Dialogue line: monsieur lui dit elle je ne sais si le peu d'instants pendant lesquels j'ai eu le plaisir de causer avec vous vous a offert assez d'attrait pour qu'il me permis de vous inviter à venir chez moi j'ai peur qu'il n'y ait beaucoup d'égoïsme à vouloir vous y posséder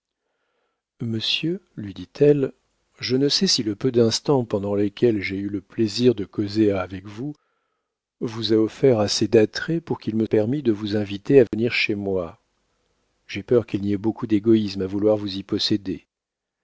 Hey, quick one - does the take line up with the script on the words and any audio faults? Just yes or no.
no